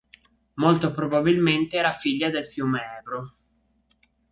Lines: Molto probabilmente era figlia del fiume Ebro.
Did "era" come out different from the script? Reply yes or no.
no